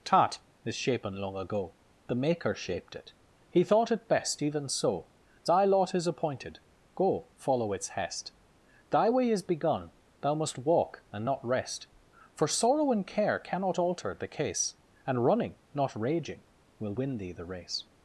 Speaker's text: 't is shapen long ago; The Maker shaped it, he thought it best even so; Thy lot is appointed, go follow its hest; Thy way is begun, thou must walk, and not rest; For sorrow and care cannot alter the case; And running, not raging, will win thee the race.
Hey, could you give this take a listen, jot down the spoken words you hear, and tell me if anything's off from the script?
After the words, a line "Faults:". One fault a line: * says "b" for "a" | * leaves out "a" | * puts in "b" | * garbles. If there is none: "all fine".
'tat is shapen long ago; The Maker shaped it, he thought it best even so; Thy lot is appointed, go follow its hest; Thy way is begun, thou must walk, and not rest; For sorrow and care cannot alter the case; And running, not raging, will win thee the race.
Faults:
* says "tat" for "t"